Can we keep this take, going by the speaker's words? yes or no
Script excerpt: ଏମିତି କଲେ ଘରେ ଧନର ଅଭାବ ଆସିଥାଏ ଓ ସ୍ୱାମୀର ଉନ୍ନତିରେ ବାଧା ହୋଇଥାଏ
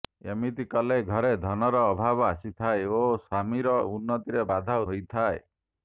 yes